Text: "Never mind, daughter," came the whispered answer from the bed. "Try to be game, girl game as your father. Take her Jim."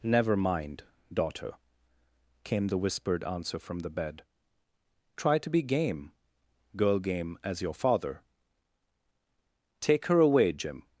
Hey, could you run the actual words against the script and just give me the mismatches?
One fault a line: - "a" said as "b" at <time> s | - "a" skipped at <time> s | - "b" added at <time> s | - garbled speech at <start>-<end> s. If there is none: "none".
- "away" added at 10.2 s